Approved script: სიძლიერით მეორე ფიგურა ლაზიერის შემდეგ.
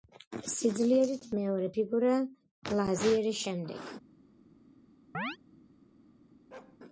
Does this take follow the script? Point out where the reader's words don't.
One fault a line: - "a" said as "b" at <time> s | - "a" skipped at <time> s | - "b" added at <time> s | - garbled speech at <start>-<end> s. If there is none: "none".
none